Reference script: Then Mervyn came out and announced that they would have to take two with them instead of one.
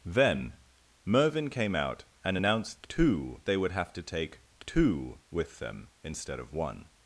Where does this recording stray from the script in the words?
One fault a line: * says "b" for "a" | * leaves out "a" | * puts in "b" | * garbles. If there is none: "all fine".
* says "two" for "that"